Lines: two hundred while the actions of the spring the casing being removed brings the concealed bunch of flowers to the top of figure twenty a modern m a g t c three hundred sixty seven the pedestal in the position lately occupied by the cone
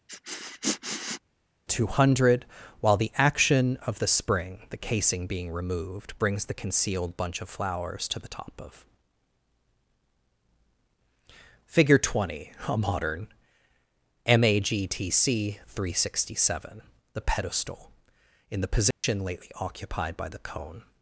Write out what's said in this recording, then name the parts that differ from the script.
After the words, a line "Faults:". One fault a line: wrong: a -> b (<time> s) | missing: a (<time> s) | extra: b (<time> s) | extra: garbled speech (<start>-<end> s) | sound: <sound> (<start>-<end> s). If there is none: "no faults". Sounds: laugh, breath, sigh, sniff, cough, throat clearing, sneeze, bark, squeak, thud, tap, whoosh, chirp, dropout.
two hundred while the action of the spring the casing being removed brings the concealed bunch of flowers to the top of figure twenty a modern m a g t c three hundred sixty seven the pedestal in the position lately occupied by the cone
Faults:
sound: sniff (0.1-1.2 s)
wrong: actions -> action (3.2 s)
sound: dropout (18.9-19.0 s)